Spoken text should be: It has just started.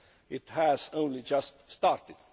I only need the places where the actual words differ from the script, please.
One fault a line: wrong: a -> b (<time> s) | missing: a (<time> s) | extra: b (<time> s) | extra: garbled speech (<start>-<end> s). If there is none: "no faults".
extra: only (0.9 s)